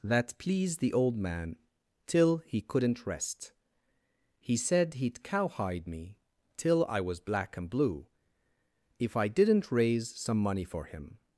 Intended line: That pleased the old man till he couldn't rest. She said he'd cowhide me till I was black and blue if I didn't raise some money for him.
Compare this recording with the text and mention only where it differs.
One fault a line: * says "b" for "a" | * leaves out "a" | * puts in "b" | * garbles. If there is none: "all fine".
* says "He" for "She"